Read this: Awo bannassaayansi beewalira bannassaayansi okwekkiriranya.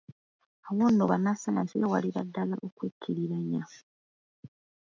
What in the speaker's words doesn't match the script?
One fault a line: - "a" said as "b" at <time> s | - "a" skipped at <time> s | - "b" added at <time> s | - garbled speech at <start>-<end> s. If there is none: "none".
- "nno" added at 0.9 s
- "bannassaayansi" said as "ddala" at 2.3 s